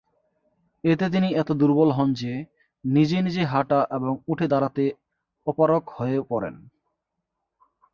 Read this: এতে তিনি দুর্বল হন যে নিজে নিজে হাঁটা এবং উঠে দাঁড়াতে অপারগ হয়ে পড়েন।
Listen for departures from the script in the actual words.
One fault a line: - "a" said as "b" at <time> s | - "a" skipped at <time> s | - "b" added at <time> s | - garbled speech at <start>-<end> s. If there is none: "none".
- "এত" added at 1.3 s